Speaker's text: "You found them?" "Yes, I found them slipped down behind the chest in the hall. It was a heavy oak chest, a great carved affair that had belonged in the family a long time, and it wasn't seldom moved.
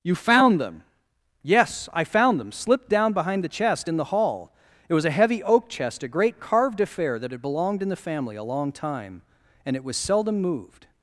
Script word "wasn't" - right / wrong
wrong